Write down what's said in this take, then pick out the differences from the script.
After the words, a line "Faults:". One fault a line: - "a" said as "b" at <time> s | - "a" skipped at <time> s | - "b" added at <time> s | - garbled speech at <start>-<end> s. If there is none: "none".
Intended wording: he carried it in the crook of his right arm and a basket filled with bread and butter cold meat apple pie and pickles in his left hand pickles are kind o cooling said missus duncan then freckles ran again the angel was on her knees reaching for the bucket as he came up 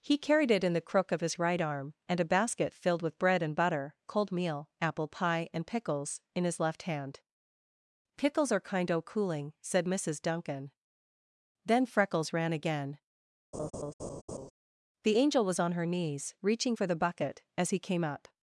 he carried it in the crook of his right arm and a basket filled with bread and butter cold meal apple pie and pickles in his left hand pickles are kind o cooling said missus duncan then freckles ran again the angel was on her knees reaching for the bucket as he came up
Faults:
- "meat" said as "meal" at 4.3 s